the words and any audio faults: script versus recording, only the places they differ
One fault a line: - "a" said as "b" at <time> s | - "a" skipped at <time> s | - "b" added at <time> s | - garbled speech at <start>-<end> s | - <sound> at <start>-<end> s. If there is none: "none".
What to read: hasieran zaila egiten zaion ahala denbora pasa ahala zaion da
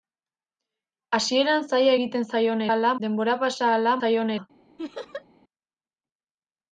- laugh at 4.8-5.3 s